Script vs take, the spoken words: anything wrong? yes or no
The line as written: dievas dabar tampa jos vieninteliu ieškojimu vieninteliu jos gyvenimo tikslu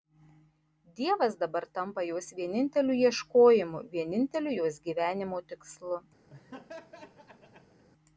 no